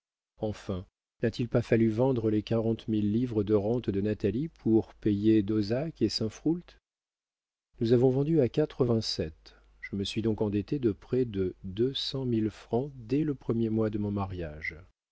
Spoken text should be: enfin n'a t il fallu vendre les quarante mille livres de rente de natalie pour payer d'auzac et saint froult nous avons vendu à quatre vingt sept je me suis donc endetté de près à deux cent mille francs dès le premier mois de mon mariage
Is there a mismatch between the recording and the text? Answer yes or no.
yes